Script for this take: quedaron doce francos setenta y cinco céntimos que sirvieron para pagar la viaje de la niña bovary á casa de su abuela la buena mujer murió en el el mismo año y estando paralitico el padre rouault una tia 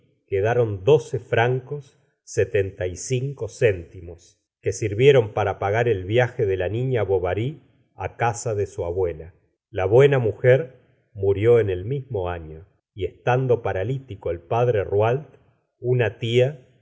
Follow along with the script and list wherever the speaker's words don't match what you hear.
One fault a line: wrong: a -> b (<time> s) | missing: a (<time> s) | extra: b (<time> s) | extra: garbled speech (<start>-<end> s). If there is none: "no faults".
wrong: la -> el (5.9 s)
missing: el (11.8 s)